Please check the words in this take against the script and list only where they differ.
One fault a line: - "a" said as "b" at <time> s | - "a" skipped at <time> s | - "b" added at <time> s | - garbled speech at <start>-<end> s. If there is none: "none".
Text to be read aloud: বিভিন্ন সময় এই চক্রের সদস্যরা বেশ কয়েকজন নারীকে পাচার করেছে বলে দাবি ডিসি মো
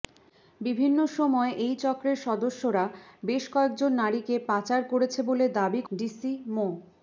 none